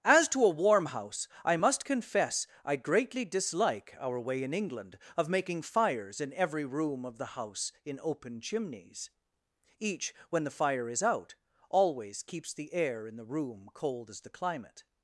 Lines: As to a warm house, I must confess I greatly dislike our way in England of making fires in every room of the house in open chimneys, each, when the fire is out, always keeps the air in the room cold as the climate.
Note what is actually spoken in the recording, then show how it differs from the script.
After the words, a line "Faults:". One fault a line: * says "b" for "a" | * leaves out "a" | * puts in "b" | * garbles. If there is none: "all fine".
As to a warm house, I must confess I greatly dislike our way in England of making fires in every room of the house in open chimneys, each, when the fire is out, always keeps the air in the room cold as the climate.
Faults:
all fine